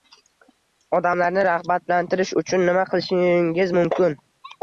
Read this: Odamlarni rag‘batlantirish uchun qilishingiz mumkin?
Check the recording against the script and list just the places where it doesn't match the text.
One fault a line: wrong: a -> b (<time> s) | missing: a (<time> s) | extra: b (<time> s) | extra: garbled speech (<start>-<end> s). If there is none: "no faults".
extra: nima (2.7 s)